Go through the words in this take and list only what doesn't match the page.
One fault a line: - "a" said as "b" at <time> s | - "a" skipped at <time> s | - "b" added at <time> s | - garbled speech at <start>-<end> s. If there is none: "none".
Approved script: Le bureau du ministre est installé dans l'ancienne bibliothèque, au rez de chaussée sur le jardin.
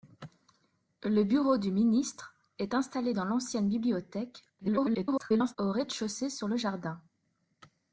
- garbled speech at 4.6-5.6 s